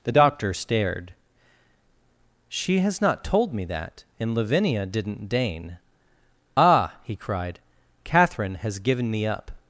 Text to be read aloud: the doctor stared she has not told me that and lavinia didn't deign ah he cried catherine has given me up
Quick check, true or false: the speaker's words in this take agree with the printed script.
true